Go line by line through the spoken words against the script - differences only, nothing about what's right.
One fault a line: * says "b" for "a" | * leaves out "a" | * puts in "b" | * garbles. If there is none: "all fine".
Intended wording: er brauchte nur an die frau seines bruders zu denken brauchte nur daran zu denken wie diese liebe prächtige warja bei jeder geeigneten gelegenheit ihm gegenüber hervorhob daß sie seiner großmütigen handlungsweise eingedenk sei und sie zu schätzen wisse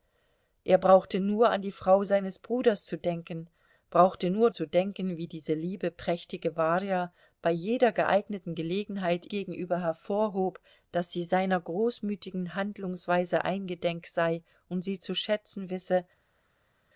* leaves out "daran"
* leaves out "ihm"